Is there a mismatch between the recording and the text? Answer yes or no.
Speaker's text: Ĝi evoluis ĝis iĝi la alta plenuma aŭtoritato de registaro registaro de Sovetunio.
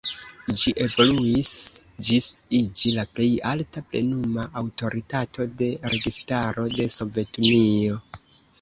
yes